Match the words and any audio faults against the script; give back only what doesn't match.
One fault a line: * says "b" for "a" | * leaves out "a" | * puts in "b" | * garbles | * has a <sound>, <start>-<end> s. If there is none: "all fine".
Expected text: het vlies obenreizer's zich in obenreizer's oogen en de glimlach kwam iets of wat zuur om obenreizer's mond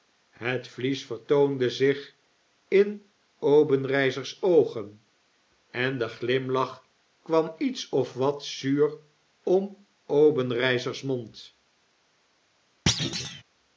* says "vertoonde" for "obenreizer's"
* has a thud, 12.9-13.4 s